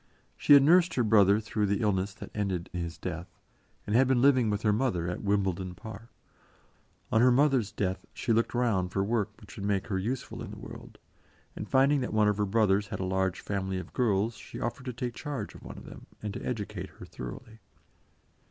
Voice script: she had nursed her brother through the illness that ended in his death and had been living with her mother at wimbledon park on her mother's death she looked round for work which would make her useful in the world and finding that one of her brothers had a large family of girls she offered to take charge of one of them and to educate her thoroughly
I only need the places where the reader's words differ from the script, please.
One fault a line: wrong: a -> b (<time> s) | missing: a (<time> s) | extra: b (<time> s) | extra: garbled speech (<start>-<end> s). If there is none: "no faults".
missing: in (2.7 s)